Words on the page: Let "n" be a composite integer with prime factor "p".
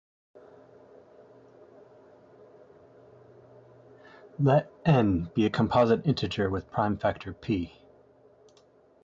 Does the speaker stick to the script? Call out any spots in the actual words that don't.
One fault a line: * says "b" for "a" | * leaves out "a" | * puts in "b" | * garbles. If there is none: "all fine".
all fine